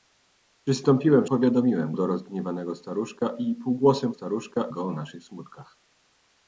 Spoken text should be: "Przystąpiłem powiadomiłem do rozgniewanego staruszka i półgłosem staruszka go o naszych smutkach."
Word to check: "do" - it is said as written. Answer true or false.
true